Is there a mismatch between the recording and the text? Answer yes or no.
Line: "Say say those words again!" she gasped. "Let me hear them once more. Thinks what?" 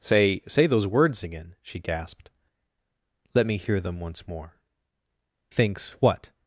no